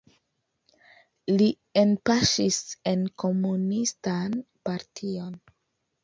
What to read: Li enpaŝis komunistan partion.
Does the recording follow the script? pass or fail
fail